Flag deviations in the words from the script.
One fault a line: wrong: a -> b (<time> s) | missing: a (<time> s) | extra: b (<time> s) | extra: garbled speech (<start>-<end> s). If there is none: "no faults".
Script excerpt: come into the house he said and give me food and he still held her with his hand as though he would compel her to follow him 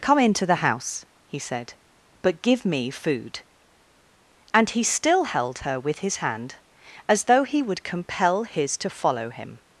wrong: and -> but (2.2 s)
wrong: her -> his (8.4 s)